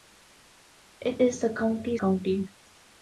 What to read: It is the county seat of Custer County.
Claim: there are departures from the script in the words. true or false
true